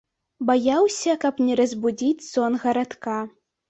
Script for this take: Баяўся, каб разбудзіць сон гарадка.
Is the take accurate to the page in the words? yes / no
no